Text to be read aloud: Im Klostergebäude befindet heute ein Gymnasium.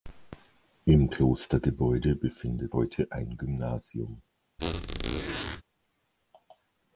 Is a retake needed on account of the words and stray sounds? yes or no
yes